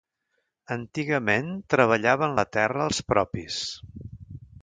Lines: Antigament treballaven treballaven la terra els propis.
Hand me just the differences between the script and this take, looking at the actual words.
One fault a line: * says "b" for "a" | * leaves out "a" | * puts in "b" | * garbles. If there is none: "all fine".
* leaves out "treballaven"